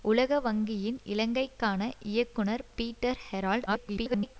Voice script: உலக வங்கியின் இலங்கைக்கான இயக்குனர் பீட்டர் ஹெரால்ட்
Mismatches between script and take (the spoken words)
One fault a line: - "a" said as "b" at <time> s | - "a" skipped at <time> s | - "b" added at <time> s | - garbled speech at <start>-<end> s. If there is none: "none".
- garbled speech at 3.7-4.4 s